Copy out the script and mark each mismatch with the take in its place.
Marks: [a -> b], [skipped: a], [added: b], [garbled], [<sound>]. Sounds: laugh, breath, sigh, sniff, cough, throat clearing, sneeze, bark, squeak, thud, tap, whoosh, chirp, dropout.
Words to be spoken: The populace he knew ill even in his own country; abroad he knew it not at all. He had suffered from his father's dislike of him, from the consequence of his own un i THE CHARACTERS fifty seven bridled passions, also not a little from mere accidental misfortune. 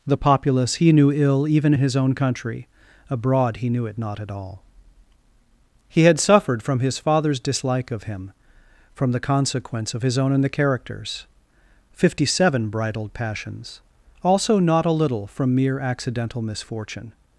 The populace he knew ill even in his own country; abroad he knew it not at all. He had suffered from his father's dislike of him, from the consequence of his own [un i -> and] THE CHARACTERS fifty seven bridled passions, also not a little from mere accidental misfortune.